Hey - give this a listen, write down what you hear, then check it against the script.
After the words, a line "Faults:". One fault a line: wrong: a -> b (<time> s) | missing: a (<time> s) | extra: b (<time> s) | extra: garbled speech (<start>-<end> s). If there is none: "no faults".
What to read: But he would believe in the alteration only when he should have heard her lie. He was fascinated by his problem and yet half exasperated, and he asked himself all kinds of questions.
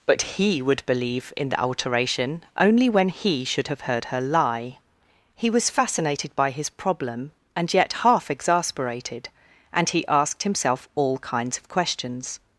But he would believe in the alteration only when he should have heard her lie. He was fascinated by his problem and yet half exasperated, and he asked himself all kinds of questions.
Faults:
no faults